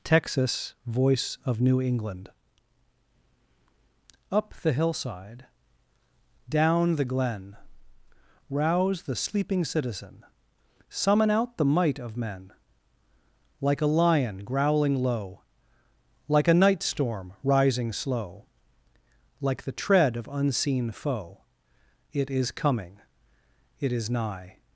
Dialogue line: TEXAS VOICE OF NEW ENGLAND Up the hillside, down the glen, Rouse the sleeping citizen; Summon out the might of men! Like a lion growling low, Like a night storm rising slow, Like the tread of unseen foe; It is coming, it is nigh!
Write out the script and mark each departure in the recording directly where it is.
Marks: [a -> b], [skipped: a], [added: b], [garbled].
TEXAS VOICE OF NEW ENGLAND Up the hillside, down the glen, Rouse the sleeping citizen; Summon out the might of men! Like a lion growling low, Like a night storm rising slow, Like the tread of unseen foe; It is coming, it is nigh!